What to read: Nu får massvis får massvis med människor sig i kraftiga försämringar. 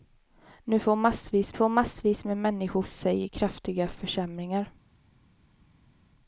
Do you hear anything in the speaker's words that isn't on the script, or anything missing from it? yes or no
no